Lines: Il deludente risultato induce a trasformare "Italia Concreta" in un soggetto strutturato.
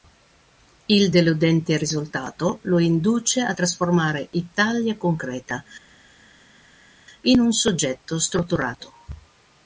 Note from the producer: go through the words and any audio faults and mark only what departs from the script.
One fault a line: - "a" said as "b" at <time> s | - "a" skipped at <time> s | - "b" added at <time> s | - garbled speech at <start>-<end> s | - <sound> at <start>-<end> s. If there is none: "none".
- "lo" added at 2.6 s